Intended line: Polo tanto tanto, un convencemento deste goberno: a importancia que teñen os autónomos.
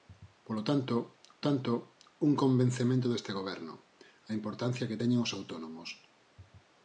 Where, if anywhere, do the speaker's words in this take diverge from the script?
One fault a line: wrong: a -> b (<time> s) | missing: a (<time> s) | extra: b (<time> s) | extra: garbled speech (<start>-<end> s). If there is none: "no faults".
no faults